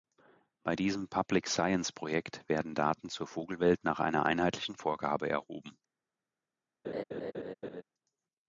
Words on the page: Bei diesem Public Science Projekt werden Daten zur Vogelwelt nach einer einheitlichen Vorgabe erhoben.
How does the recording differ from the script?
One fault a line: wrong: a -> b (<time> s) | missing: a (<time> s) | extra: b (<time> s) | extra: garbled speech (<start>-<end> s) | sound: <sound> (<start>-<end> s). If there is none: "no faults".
sound: laugh (6.8-7.8 s)